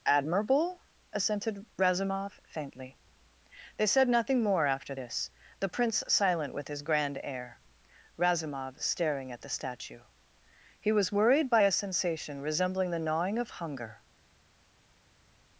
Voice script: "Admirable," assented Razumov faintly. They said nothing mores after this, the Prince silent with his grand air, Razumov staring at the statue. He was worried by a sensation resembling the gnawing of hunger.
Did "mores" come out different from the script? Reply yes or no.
yes